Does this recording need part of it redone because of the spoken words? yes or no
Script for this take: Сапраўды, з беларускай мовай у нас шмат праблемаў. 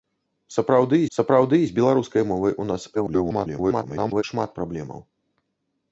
yes